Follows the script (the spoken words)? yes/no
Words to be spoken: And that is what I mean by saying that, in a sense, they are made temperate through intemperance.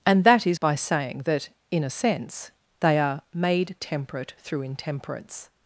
no